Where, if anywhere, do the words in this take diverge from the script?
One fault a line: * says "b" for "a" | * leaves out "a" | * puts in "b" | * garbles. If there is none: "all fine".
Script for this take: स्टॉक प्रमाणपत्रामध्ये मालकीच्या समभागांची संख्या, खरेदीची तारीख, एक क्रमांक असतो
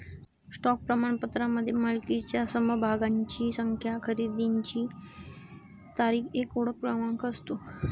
* puts in "ओळख"